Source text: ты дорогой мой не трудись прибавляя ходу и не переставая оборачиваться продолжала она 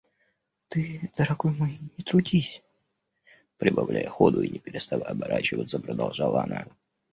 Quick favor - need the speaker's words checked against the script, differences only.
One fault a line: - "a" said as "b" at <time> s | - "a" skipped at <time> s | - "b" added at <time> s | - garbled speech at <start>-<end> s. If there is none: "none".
none